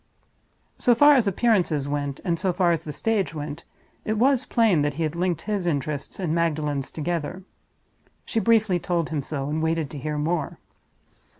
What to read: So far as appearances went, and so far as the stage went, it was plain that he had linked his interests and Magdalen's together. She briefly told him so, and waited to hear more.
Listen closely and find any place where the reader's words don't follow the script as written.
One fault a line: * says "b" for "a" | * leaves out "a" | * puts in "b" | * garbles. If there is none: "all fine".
all fine